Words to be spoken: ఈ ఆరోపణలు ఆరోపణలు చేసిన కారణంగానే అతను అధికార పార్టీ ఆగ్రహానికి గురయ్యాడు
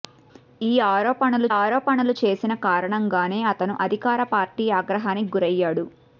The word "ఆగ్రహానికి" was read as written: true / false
true